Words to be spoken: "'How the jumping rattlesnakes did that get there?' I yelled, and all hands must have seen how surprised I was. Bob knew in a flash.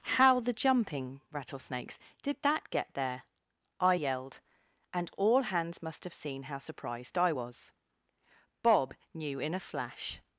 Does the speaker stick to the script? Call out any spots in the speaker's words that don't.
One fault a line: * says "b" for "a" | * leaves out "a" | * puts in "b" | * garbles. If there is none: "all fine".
all fine